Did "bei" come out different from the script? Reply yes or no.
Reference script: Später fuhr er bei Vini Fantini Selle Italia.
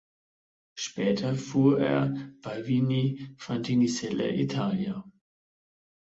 no